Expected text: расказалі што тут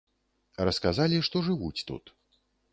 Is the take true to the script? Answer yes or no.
no